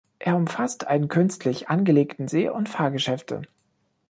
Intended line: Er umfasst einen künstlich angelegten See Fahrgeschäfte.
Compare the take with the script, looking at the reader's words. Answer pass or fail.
fail